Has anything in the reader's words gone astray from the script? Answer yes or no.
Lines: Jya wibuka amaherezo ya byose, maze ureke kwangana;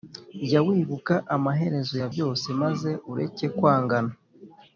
no